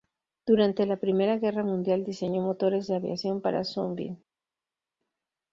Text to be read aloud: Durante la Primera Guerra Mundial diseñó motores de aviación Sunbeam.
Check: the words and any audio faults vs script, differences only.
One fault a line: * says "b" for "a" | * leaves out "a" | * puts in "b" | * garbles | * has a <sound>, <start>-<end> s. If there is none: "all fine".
* puts in "para"